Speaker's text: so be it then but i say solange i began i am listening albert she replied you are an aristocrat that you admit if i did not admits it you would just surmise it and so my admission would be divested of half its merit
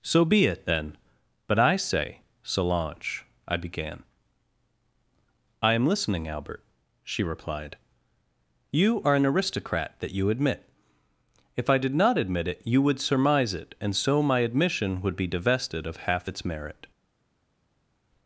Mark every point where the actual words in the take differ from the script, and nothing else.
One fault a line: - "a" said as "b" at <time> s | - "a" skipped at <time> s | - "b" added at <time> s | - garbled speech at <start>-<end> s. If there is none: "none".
- "admits" said as "admit" at 12.2 s
- "just" skipped at 13.0 s